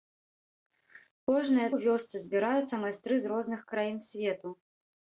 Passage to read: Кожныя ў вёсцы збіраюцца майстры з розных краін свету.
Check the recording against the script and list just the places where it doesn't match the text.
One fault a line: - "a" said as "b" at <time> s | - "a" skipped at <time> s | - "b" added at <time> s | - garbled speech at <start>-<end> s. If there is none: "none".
none